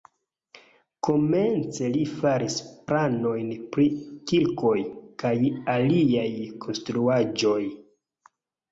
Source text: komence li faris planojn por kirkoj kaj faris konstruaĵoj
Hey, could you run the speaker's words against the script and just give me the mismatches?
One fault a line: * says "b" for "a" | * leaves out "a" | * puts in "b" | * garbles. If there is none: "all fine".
* says "pri" for "por"
* says "aliaj" for "faris"